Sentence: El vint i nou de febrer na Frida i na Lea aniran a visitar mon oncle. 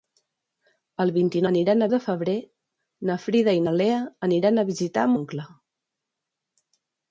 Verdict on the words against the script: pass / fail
fail